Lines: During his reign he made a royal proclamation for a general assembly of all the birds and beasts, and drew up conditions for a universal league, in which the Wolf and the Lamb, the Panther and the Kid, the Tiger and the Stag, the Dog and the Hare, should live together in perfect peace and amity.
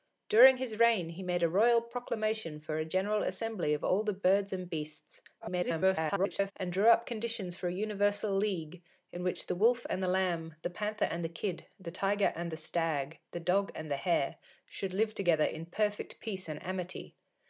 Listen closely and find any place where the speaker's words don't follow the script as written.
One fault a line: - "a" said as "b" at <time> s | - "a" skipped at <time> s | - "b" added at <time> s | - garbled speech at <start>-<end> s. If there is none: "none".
- garbled speech at 5.4-6.5 s